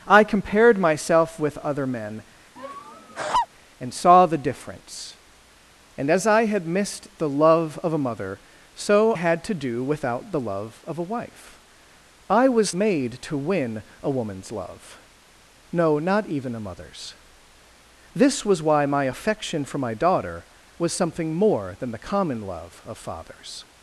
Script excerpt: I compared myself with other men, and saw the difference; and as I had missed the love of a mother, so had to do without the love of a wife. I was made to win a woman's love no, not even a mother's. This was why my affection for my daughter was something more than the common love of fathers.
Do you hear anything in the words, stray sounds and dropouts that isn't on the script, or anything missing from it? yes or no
yes